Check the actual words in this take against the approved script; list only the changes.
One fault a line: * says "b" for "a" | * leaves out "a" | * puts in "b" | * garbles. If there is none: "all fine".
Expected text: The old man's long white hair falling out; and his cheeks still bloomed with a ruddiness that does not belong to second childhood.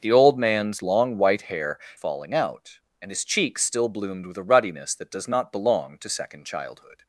all fine